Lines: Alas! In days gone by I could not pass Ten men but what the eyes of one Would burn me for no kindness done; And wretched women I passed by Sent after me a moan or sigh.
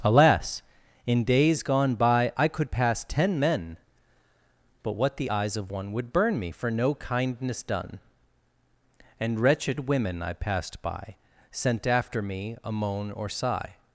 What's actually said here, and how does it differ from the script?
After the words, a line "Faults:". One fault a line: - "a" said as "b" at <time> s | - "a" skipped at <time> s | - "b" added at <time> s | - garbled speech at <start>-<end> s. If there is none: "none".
Alas! In days gone by I could pass Ten men but what the eyes of one Would burn me for no kindness done; And wretched women I passed by Sent after me a moan or sigh.
Faults:
- "not" skipped at 2.7 s